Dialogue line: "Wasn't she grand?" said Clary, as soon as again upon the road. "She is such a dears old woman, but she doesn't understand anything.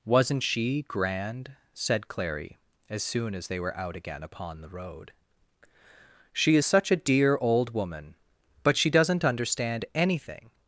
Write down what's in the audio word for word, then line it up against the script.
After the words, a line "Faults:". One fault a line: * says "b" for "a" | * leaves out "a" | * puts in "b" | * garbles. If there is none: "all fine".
"Wasn't she grand?" said Clary, as soon as they were out again upon the road. "She is such a dear old woman, but she doesn't understand anything.
Faults:
* puts in "they were out"
* says "dear" for "dears"